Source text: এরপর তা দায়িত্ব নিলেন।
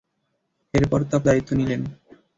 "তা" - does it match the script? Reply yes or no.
yes